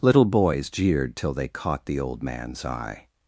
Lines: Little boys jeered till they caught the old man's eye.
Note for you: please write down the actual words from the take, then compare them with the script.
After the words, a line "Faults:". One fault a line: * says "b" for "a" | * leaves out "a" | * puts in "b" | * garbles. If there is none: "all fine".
Little boys jeered till they caught the old man's eye.
Faults:
all fine